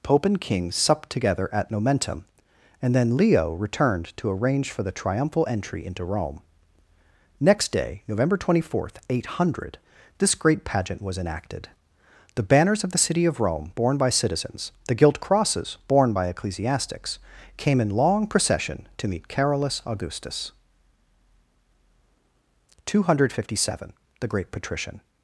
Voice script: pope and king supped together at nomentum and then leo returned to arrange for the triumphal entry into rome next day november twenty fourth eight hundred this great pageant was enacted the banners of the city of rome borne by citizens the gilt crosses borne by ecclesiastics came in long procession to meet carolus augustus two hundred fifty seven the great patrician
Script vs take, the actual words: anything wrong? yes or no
no